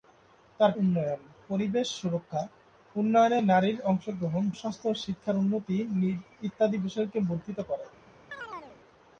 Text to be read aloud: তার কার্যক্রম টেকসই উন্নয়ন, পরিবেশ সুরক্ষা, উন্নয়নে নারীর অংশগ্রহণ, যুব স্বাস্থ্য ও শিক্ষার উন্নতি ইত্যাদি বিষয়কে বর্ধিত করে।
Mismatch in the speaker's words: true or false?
true